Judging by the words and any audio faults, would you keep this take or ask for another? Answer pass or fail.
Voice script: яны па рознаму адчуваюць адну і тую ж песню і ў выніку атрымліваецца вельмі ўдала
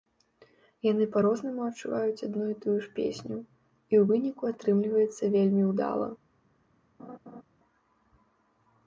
fail